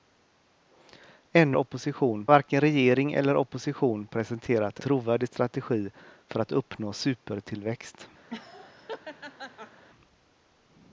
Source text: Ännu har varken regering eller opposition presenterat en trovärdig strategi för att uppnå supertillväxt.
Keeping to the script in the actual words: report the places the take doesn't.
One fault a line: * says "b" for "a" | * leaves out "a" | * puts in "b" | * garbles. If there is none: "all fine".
* says "opposition" for "har"
* leaves out "en"